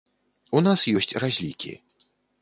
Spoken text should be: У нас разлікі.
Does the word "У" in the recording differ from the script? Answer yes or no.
no